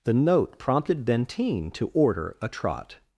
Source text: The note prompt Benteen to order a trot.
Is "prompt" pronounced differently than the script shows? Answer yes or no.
yes